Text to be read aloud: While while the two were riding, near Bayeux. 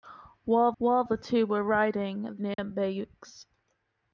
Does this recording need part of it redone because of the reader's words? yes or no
no